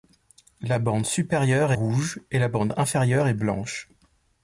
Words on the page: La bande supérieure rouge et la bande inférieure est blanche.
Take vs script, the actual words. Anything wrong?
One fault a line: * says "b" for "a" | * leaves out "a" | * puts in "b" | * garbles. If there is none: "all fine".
all fine